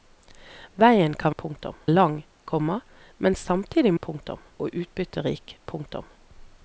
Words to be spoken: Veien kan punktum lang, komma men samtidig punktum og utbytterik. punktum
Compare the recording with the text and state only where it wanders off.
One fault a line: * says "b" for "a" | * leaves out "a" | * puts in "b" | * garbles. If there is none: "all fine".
all fine